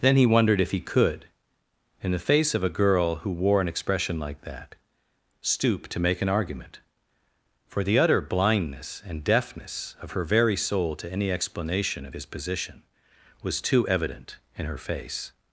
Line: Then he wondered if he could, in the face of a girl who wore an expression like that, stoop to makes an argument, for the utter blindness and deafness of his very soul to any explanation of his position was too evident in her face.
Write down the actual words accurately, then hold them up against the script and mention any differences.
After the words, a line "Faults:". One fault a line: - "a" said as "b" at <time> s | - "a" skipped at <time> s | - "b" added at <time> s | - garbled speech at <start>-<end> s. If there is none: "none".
Then he wondered if he could, in the face of a girl who wore an expression like that, stoop to make an argument, for the utter blindness and deafness of her very soul to any explanation of his position was too evident in her face.
Faults:
- "makes" said as "make" at 6.0 s
- "his" said as "her" at 10.1 s